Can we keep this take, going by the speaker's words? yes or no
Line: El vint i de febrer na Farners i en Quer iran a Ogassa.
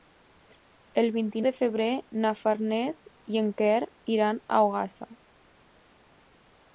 yes